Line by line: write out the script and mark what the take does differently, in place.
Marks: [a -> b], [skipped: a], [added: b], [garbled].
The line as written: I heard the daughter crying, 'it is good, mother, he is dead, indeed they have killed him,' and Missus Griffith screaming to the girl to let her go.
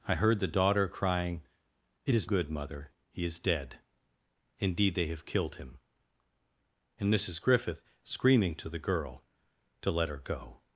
I heard the daughter crying, 'it is good, mother, he is dead, indeed they have killed him,' and Missus Griffith screaming to the girl to let her go.